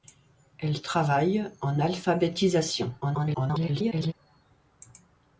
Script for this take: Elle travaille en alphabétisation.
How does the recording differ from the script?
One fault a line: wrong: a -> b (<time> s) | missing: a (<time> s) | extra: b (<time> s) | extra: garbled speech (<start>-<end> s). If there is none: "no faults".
extra: garbled speech (3.0-4.1 s)